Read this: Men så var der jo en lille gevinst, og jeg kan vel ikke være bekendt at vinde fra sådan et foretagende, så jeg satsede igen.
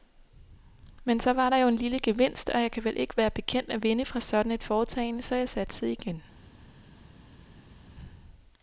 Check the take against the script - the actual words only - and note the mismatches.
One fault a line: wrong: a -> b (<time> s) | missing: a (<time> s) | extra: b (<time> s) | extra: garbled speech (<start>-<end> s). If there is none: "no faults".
no faults